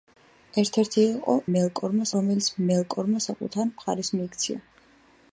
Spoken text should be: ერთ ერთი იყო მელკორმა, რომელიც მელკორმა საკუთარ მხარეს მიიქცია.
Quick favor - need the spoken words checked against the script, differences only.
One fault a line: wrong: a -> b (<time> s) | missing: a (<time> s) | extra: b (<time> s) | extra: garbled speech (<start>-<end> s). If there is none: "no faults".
no faults